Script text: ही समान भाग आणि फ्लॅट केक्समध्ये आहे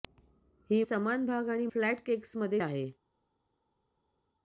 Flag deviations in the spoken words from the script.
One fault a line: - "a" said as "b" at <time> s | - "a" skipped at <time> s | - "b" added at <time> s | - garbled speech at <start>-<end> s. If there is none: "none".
none